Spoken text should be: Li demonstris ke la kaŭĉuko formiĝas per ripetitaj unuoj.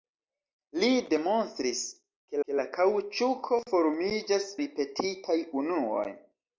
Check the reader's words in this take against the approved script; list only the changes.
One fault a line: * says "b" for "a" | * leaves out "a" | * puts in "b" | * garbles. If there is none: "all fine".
* puts in "ke"
* leaves out "per"